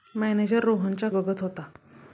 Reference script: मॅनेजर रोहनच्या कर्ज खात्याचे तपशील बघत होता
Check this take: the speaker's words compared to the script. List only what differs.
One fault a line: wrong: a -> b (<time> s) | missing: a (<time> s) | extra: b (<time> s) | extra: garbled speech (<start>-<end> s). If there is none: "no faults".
missing: कर्ज खात्याचे तपशील (1.1 s)